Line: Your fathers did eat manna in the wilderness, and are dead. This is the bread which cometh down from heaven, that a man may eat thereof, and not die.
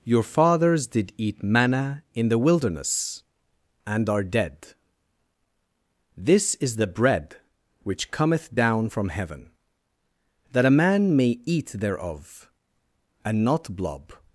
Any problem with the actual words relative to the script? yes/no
yes